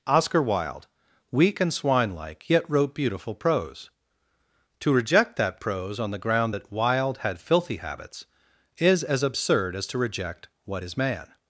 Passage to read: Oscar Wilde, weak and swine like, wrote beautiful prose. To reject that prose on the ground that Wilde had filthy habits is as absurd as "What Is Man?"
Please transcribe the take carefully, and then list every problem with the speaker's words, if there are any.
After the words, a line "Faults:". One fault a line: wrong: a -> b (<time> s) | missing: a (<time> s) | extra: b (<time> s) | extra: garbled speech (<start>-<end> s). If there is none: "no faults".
Oscar Wilde, weak and swine like, yet wrote beautiful prose. To reject that prose on the ground that Wilde had filthy habits is as absurd as to reject "What Is Man?"
Faults:
extra: yet (2.5 s)
extra: to reject (9.9 s)